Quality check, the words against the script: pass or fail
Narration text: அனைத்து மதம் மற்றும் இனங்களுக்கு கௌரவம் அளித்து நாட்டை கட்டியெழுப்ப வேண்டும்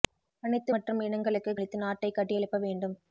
fail